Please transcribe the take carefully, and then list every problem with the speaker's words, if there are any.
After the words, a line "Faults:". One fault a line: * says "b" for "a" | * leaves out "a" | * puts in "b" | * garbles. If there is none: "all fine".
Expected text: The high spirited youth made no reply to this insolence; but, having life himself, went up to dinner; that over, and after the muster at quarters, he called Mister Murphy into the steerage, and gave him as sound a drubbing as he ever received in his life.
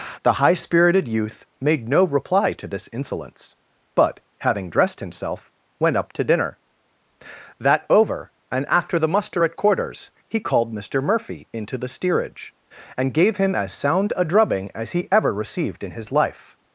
The high spirited youth made no reply to this insolence; but, having dressed himself, went up to dinner; that over, and after the muster at quarters, he called Mister Murphy into the steerage, and gave him as sound a drubbing as he ever received in his life.
Faults:
* says "dressed" for "life"